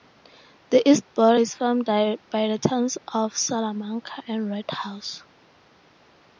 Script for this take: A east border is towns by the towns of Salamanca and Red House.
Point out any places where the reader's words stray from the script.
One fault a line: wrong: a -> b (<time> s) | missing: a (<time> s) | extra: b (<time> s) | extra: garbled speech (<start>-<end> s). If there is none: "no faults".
wrong: A -> The (0.7 s)
wrong: towns -> formed (1.6 s)